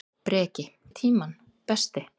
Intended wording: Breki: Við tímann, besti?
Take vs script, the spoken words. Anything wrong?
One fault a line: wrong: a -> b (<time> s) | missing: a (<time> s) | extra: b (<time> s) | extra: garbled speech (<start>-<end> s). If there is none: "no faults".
no faults